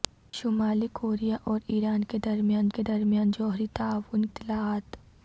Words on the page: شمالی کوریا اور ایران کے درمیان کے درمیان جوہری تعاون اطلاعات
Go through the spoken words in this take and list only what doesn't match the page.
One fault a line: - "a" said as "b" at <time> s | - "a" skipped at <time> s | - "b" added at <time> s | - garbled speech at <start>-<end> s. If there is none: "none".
none